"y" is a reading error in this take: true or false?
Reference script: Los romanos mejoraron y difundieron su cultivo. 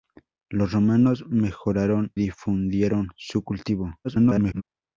true